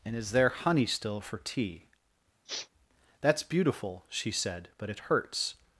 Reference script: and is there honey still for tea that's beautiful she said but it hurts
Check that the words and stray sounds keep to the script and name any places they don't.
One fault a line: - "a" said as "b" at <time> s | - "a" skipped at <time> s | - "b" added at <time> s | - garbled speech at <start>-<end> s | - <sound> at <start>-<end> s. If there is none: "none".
- sniff at 2.5-2.7 s